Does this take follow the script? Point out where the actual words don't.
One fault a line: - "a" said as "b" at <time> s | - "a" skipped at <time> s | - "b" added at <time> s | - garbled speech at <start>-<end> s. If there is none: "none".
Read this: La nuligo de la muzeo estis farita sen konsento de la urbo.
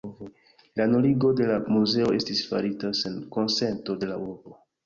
none